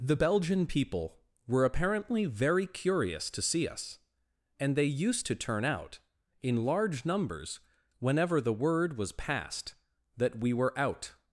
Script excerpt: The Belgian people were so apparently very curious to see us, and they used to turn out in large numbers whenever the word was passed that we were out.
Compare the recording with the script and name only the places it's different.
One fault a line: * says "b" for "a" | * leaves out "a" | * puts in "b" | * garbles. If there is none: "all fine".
* leaves out "so"